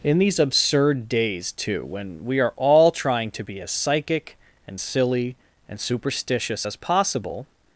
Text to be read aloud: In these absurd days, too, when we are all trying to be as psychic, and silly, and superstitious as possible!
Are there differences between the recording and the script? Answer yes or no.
no